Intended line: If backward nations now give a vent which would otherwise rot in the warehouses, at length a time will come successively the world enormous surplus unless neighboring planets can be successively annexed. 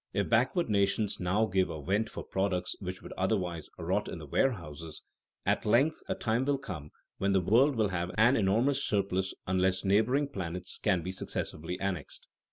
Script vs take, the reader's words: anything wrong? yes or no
yes